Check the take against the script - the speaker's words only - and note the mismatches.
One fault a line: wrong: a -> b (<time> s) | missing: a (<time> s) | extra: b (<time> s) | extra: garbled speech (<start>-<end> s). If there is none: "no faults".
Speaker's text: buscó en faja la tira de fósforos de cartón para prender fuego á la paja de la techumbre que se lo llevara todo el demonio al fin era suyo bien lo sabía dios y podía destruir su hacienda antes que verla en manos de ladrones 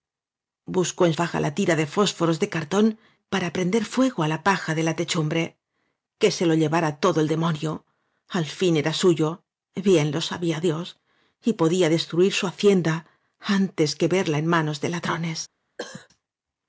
no faults